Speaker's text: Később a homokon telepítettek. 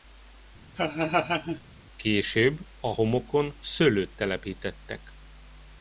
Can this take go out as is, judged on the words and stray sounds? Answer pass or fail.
fail